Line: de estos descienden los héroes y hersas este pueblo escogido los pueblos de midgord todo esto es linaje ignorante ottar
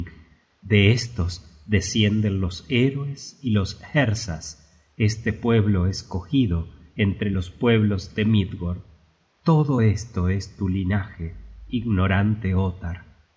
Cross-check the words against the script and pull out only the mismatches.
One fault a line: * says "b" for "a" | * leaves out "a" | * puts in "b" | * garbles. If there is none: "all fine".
* puts in "los"
* puts in "entre"
* puts in "tu"